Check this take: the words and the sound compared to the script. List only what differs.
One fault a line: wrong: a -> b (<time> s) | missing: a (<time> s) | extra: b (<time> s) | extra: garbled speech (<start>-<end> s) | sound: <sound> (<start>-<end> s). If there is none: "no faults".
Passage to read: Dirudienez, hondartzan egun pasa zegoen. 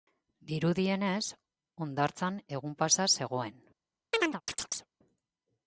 sound: chirp (4.1-4.9 s)